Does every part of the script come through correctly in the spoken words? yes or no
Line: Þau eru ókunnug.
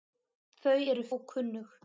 yes